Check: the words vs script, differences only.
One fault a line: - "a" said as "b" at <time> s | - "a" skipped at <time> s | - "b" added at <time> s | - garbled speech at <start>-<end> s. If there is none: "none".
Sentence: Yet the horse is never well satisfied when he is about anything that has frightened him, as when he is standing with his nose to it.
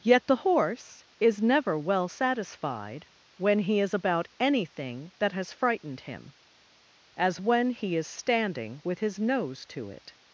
none